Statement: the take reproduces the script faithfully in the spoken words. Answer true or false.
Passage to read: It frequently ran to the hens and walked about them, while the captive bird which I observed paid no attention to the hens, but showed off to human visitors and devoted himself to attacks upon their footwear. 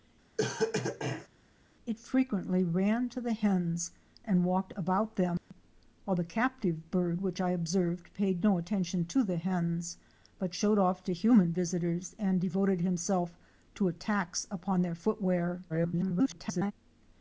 false